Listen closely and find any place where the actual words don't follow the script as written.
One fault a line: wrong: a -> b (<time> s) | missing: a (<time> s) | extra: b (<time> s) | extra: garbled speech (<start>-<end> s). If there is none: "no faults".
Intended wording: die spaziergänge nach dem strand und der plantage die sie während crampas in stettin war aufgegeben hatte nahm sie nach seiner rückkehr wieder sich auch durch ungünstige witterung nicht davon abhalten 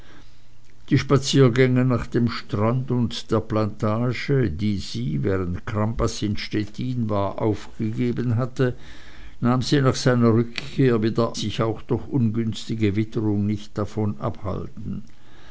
no faults